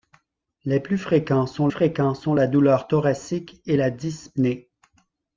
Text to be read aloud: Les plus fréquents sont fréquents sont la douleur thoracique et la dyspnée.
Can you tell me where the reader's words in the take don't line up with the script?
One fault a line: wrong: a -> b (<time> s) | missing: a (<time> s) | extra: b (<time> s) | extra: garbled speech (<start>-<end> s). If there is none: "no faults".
no faults